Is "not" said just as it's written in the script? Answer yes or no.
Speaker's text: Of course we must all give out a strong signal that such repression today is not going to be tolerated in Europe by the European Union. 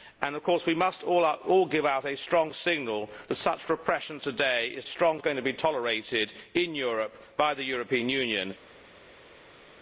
no